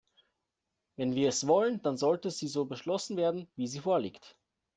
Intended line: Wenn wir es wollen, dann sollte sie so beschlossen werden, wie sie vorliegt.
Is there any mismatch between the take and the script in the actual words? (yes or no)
no